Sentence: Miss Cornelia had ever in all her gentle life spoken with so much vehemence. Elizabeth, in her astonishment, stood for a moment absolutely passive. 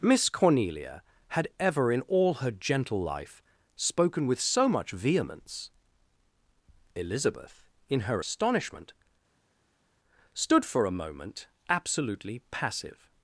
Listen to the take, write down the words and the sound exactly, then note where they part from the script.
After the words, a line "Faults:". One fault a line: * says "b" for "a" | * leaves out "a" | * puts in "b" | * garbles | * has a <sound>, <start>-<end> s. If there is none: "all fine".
Miss Cornelia had ever in all her gentle life spoken with so much vehemence. Elizabeth, in her astonishment, stood for a moment absolutely passive.
Faults:
all fine